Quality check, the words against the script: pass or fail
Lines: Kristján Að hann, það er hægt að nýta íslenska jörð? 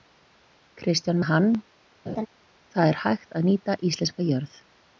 pass